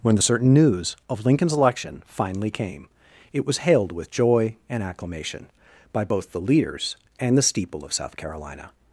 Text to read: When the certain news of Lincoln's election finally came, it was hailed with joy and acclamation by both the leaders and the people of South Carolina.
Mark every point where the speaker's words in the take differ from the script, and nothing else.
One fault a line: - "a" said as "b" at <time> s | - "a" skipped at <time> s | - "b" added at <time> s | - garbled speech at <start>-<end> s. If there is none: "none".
- "people" said as "steeple" at 7.4 s